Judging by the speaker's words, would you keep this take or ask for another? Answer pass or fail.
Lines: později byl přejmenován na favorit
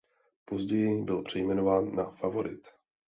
pass